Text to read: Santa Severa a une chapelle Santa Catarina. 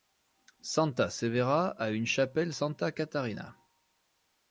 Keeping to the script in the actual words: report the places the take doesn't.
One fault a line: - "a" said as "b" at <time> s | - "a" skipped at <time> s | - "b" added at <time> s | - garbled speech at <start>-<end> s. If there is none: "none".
none